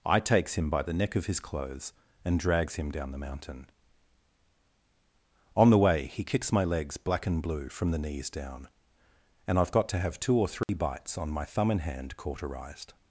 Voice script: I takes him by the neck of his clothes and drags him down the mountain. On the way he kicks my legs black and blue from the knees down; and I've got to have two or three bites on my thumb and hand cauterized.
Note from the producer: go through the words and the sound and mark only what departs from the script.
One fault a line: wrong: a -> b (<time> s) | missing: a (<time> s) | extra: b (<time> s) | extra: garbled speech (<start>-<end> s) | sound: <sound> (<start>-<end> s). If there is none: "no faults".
sound: dropout (10.6-10.7 s)